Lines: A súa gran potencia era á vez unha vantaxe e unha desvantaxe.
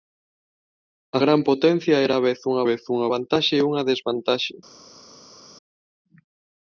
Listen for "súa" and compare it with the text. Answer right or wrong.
wrong